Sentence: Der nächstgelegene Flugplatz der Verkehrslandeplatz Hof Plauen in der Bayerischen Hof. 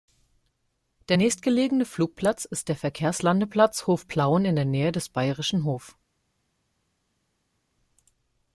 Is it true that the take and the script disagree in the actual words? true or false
true